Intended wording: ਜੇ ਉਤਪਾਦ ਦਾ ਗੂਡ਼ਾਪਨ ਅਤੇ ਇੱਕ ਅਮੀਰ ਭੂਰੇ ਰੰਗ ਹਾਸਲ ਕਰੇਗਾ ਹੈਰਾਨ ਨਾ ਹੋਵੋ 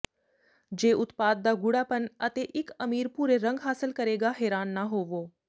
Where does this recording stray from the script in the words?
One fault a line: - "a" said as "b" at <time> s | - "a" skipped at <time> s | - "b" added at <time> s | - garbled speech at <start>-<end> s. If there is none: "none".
none